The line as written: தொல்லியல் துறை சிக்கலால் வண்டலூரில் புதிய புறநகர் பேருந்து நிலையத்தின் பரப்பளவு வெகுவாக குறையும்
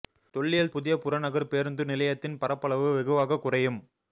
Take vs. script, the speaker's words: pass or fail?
fail